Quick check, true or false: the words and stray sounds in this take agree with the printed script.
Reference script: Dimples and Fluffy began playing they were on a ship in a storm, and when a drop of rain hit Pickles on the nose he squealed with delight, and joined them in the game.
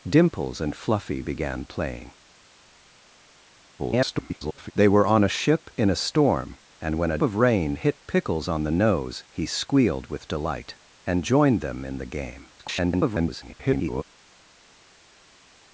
false